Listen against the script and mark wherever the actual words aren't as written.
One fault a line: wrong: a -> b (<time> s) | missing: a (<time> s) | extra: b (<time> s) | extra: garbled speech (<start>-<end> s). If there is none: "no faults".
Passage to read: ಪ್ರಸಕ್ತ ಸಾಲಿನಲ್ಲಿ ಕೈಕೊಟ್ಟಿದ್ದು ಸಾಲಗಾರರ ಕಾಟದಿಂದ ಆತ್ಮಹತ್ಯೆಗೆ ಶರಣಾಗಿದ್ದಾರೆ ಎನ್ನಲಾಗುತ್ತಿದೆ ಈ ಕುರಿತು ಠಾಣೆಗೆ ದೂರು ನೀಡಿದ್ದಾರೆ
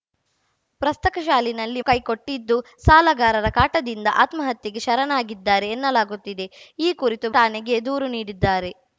no faults